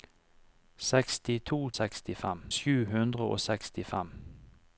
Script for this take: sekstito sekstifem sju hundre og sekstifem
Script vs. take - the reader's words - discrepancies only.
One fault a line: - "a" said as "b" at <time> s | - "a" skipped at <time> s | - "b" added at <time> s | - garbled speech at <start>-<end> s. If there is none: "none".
none